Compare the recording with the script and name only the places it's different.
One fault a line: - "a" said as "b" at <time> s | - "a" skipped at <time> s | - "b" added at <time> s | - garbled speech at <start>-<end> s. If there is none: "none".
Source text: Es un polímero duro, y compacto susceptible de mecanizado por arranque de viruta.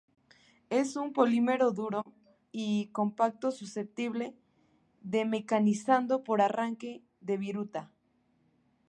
none